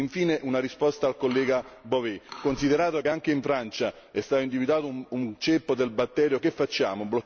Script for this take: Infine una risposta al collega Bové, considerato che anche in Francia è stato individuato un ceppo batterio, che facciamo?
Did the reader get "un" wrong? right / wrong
right